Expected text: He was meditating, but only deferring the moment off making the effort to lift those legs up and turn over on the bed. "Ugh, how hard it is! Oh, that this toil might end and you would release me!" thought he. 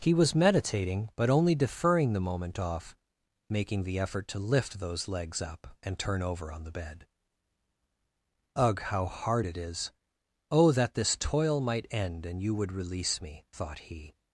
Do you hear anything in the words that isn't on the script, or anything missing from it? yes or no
no